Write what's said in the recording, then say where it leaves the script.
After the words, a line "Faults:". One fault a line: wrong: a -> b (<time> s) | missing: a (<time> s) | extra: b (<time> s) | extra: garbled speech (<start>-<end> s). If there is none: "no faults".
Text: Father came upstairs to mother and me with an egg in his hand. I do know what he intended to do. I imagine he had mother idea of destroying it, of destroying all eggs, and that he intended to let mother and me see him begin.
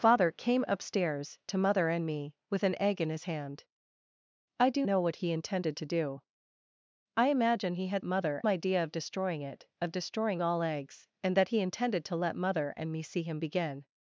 Father came upstairs to mother and me with an egg in his hand. I do know what he intended to do. I imagine he had mother idea of destroying it, of destroying all eggs, and that he intended to let mother and me see him begin.
Faults:
no faults